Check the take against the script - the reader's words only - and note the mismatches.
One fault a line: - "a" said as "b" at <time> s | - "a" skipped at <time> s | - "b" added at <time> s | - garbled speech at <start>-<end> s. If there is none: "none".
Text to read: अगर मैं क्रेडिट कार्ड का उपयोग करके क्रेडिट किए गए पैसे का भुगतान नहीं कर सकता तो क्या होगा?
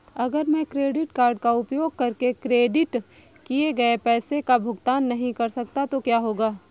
none